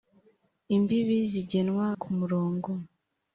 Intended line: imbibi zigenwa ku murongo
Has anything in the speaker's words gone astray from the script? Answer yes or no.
no